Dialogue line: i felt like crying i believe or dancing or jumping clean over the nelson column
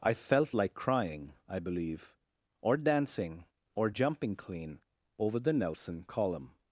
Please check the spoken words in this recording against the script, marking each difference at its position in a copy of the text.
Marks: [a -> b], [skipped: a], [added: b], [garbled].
i felt like crying i believe or dancing or jumping clean over the nelson column